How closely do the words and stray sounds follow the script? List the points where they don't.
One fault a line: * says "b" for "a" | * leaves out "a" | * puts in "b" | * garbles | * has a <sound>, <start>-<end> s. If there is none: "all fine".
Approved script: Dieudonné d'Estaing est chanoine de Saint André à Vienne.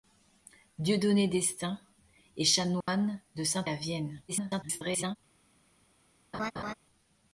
* has a dropout, 2.8-2.9 s
* leaves out "André"
* garbles
* has a laugh, 6.3-6.7 s